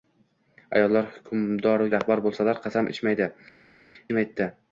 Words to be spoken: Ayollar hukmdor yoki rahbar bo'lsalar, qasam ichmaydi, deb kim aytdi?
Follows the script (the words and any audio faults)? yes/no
no